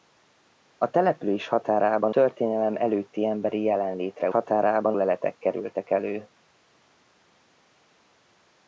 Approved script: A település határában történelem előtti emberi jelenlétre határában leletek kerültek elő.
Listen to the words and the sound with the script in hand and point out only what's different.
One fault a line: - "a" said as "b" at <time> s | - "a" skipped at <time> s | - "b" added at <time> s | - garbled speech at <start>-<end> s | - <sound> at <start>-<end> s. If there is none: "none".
none